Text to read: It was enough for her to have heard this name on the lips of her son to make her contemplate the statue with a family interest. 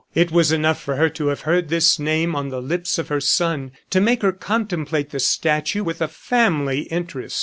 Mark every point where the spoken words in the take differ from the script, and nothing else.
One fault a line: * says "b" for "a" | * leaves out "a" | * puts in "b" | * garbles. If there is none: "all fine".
all fine